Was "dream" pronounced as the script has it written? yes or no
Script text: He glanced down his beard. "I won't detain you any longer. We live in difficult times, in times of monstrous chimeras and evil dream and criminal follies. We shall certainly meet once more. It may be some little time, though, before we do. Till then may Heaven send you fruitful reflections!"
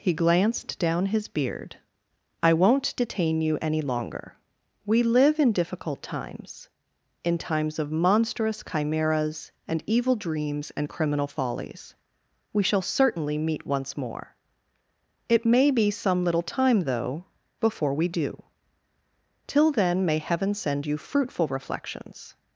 no